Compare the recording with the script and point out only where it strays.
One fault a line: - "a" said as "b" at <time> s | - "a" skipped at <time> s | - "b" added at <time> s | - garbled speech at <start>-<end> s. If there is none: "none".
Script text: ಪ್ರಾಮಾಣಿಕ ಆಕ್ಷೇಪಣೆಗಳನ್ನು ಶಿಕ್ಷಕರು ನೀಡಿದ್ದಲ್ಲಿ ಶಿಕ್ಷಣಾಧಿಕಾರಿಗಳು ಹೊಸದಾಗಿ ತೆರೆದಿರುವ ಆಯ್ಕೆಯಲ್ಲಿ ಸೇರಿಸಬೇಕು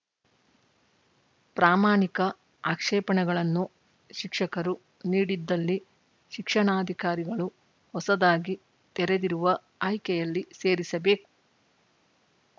none